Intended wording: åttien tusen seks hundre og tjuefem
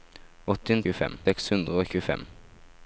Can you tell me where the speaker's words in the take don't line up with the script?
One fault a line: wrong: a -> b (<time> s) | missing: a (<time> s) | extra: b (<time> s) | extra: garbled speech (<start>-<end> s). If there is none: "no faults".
wrong: tusen -> tjuefem (0.8 s)